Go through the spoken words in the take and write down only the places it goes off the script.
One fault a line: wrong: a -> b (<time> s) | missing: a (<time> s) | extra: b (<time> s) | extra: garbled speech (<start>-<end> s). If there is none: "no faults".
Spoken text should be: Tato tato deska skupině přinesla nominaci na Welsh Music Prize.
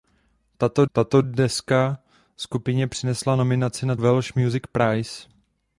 no faults